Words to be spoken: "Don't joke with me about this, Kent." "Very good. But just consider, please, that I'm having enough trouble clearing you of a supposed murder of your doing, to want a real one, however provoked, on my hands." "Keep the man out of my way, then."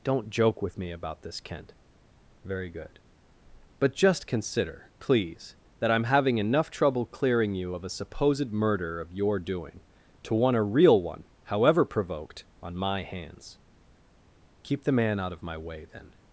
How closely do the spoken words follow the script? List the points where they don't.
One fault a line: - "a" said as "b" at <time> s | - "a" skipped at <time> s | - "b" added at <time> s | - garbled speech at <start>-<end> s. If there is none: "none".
none